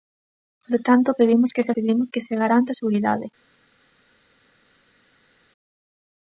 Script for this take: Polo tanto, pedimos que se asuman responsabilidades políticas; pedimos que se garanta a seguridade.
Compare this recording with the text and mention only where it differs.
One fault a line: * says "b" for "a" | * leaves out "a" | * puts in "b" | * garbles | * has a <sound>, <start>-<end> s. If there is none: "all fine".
* leaves out "asuman responsabilidades políticas"